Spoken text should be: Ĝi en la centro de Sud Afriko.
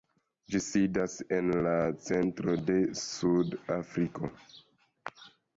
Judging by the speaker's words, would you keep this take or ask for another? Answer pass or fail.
fail